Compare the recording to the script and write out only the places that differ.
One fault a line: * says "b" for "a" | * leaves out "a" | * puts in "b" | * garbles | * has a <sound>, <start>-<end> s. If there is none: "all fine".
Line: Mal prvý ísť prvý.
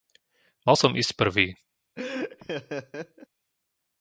* says "som" for "prvý"
* has a laugh, 2.0-3.3 s